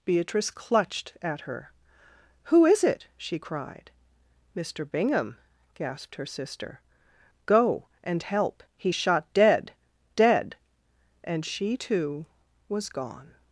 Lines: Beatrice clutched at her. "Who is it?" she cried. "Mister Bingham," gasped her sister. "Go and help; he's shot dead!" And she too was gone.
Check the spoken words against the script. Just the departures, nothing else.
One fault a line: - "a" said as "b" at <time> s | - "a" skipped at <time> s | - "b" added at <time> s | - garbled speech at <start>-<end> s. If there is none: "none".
- "dead" added at 10.1 s